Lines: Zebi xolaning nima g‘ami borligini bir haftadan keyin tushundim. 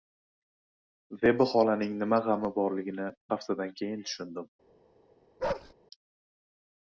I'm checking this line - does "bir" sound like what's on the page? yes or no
no